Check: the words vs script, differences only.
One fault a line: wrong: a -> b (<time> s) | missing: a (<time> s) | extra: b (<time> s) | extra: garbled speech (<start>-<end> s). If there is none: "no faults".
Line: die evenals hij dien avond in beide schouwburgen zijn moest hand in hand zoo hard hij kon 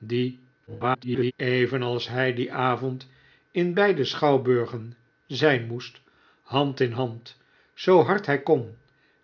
extra: garbled speech (0.7-1.3 s)